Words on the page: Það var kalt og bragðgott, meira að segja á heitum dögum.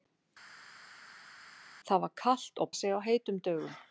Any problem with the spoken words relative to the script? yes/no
yes